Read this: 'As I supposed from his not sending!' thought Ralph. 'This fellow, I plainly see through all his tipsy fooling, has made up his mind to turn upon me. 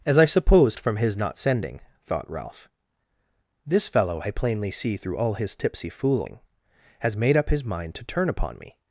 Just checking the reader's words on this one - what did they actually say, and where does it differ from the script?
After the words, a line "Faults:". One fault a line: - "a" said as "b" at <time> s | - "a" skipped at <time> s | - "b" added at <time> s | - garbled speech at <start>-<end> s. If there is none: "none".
'As I supposed from his not sending!' thought Ralph. 'This fellow, I plainly see through all his tipsy fooling, has made up his mind to turn upon me.
Faults:
none